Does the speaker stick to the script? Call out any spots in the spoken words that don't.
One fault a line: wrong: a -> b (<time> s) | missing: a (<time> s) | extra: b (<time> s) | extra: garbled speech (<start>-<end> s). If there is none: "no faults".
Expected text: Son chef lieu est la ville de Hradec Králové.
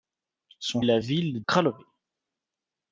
missing: chef lieu (0.8 s)
missing: de Hradec (1.4 s)